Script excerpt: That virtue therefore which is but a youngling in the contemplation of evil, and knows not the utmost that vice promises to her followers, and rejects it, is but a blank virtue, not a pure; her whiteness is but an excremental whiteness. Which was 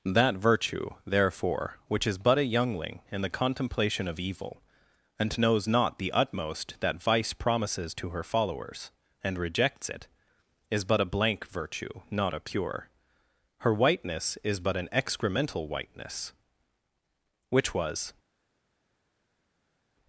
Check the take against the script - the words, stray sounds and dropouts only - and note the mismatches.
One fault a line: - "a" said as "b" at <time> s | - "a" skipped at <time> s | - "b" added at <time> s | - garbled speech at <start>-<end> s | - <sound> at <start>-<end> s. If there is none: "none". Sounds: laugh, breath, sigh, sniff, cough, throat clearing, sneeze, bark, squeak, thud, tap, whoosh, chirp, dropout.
none